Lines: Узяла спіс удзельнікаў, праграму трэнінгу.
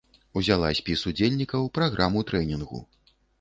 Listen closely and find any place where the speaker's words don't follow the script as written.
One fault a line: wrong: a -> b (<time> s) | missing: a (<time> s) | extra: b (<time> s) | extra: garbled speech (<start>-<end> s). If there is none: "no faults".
no faults